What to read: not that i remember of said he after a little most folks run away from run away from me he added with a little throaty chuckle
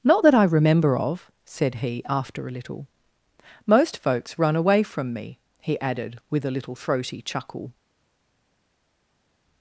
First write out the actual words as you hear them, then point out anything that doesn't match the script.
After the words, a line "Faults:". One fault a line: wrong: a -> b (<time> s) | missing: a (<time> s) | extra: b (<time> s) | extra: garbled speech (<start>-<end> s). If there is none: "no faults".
not that i remember of said he after a little most folks run away from me he added with a little throaty chuckle
Faults:
missing: run away from (5.1 s)